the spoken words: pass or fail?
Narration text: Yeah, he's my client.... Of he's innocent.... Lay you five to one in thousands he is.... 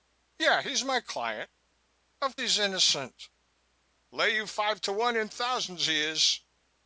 pass